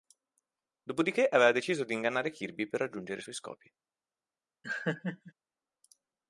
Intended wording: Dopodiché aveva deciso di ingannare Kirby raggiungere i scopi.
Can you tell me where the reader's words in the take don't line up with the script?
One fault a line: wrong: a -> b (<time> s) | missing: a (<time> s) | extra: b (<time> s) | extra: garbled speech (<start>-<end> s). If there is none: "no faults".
extra: per (2.6 s)
extra: suoi (3.2 s)